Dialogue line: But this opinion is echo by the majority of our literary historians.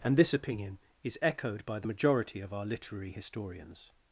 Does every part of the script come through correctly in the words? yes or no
no